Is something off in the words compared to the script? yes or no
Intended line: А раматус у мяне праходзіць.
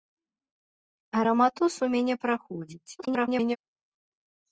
yes